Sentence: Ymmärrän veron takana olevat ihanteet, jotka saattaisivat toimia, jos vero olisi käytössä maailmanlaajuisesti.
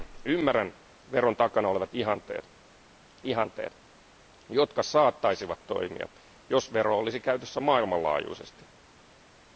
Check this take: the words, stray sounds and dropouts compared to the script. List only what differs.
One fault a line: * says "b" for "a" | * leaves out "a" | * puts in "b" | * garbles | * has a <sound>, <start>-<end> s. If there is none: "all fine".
* puts in "ihanteet"